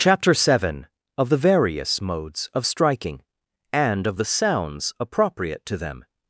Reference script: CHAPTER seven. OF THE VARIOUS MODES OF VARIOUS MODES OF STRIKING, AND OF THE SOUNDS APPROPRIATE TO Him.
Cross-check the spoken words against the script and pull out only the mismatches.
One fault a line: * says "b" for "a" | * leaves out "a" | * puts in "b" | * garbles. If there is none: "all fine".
* leaves out "VARIOUS MODES OF"
* says "THEM" for "Him"